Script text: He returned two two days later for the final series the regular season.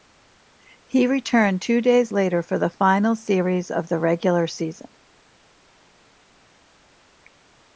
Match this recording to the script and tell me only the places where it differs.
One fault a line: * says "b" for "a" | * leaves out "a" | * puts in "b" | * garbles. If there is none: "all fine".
* leaves out "two"
* puts in "of"